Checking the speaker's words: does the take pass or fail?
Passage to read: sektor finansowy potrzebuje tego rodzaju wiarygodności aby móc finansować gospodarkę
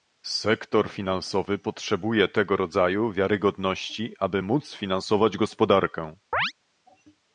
pass